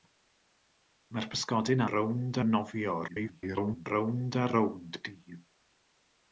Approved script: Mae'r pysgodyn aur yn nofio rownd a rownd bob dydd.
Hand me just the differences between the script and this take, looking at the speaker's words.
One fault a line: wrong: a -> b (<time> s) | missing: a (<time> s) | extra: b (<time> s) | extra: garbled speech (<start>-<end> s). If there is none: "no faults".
wrong: aur -> rownd (1.9 s)
extra: garbled speech (3.1-3.9 s)
missing: bob (5.0 s)